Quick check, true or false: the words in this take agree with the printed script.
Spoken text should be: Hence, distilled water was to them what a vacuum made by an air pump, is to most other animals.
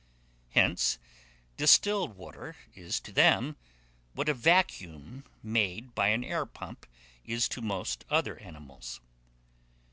false